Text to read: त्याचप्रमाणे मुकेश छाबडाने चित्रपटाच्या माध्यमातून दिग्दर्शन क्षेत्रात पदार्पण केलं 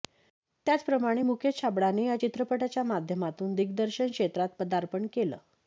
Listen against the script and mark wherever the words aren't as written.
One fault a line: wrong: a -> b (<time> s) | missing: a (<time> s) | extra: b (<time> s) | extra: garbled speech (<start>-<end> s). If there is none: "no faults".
extra: या (2.0 s)